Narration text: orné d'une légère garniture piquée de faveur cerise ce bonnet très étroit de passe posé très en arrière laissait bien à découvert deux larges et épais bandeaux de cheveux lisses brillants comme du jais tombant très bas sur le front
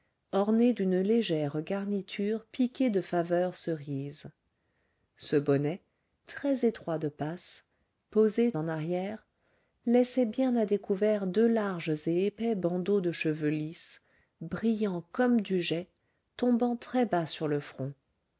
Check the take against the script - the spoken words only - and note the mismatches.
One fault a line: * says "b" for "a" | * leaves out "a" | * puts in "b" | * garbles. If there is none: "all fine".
* leaves out "très"